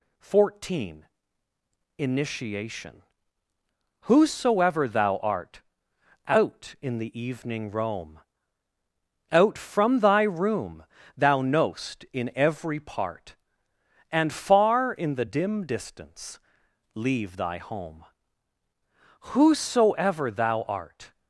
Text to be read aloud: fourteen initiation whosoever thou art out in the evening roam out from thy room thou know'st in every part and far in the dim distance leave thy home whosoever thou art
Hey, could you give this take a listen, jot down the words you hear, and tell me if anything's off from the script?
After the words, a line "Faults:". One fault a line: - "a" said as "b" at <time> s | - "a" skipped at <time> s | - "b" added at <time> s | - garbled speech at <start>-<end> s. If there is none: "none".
fourteen initiation whosoever thou art out in the evening roam out from thy room thou know'st in every part and far in the dim distance leave thy home whosoever thou art
Faults:
none